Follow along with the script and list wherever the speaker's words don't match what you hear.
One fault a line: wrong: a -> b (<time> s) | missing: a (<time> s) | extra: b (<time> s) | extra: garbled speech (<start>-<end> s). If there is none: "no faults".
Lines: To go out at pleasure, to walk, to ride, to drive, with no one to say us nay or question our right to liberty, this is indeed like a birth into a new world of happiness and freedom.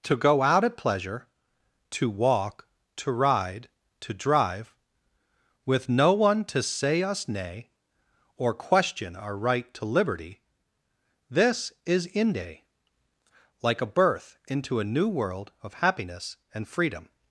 wrong: indeed -> inde (12.1 s)